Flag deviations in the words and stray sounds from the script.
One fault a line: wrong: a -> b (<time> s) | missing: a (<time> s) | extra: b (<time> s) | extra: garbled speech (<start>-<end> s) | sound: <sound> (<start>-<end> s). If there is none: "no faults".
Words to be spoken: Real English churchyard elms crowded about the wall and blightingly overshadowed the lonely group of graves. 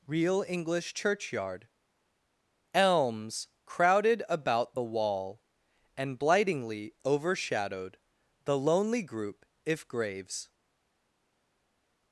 wrong: of -> if (9.6 s)